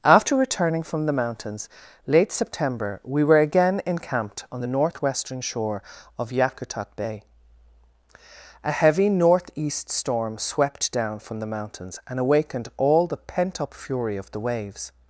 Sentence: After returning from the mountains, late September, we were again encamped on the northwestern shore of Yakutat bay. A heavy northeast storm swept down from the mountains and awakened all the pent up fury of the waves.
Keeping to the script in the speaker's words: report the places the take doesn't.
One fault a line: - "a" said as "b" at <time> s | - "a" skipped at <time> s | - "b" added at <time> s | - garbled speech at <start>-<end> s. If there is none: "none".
none